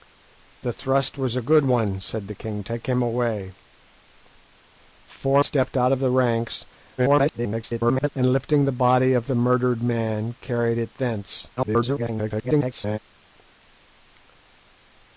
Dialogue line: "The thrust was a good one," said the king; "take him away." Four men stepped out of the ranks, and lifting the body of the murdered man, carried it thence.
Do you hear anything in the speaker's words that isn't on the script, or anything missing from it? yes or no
yes